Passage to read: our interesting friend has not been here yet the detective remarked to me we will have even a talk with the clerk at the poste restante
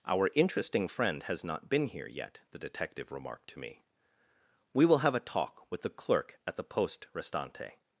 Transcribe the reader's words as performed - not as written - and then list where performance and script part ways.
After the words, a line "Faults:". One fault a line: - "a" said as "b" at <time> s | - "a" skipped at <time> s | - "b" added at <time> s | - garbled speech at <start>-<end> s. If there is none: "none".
our interesting friend has not been here yet the detective remarked to me we will have a talk with the clerk at the poste restante
Faults:
- "even" skipped at 5.2 s